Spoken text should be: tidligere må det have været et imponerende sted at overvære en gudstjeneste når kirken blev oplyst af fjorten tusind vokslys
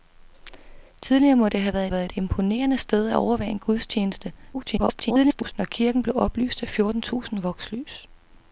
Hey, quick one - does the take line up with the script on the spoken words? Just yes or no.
no